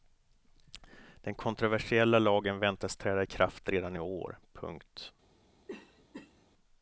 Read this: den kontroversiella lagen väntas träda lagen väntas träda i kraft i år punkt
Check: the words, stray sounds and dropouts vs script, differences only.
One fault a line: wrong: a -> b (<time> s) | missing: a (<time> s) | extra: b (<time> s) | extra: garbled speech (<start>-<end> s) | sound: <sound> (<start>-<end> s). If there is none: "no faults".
missing: lagen väntas träda (3.2 s)
extra: redan (3.7 s)
sound: cough (5.7-6.5 s)